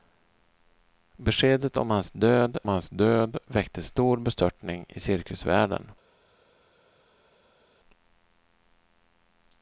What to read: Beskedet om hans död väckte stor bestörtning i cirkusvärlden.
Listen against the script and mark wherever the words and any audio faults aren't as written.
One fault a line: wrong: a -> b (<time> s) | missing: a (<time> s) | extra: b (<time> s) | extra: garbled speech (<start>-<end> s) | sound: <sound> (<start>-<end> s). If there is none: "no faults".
extra: hans död (2.7 s)